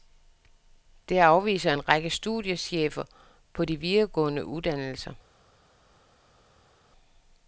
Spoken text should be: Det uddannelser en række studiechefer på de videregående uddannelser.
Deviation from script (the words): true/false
true